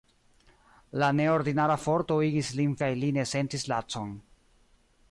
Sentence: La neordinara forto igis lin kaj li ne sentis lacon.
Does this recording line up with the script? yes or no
yes